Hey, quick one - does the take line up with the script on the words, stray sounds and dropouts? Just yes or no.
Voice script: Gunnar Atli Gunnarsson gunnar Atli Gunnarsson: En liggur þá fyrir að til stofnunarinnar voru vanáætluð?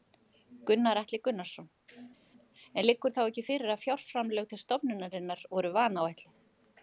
no